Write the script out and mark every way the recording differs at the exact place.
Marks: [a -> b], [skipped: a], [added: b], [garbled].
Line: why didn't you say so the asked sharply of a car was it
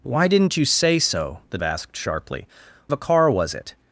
why didn't you say so the asked sharply of a car was it